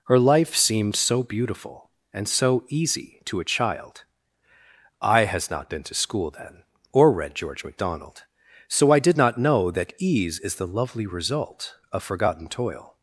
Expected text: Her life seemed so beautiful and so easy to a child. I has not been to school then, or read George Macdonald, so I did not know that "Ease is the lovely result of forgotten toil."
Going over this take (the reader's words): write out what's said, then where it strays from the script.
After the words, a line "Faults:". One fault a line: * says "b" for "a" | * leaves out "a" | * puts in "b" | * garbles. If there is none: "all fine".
Her life seemed so beautiful and so easy to a child. I has not been to school then, or read George Macdonald, so I did not know that "Ease is the lovely result of forgotten toil."
Faults:
all fine